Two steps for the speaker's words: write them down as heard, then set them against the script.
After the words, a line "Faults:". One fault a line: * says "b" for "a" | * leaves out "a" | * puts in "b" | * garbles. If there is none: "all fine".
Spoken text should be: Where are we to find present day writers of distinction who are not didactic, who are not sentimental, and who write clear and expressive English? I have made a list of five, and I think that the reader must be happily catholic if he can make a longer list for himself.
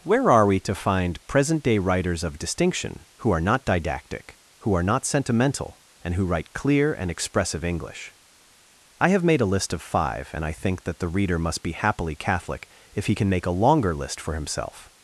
Where are we to find present day writers of distinction who are not didactic, who are not sentimental, and who write clear and expressive English? I have made a list of five, and I think that the reader must be happily catholic if he can make a longer list for himself.
Faults:
all fine